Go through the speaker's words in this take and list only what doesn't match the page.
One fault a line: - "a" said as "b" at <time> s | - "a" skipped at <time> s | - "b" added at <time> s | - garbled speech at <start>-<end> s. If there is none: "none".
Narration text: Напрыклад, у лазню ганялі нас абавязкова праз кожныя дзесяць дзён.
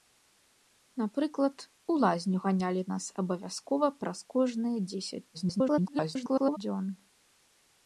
- garbled speech at 5.3-6.6 s